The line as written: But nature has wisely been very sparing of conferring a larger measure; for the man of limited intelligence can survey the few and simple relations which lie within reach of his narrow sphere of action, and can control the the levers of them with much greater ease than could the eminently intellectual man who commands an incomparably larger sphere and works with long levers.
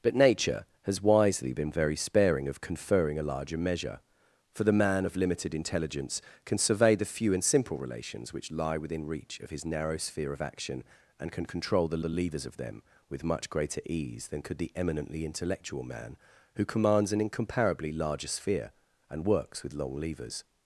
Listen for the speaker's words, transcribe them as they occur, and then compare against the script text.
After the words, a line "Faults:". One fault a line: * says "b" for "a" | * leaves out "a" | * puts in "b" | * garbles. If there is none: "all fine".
But nature has wisely been very sparing of conferring a larger measure; for the man of limited intelligence can survey the few and simple relations which lie within reach of his narrow sphere of action, and can control the the levers of them with much greater ease than could the eminently intellectual man who commands an incomparably larger sphere and works with long levers.
Faults:
all fine